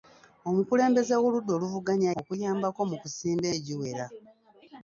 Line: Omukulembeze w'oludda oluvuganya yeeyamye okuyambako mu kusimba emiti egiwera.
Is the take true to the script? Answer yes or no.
no